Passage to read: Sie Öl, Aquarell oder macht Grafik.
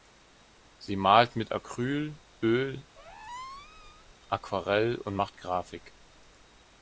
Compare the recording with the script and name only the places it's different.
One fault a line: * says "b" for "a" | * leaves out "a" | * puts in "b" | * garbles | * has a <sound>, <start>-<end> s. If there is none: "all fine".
* puts in "malt mit Acryl"
* has a squeak, 3.0-4.1 s
* says "und" for "oder"